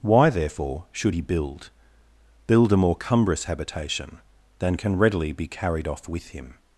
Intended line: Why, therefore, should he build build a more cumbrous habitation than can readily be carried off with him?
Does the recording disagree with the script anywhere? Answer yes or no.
no